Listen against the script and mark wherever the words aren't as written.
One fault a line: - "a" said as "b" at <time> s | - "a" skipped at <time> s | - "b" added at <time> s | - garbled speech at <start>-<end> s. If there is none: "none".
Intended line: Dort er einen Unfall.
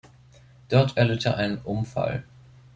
- "erlitt" added at 1.0 s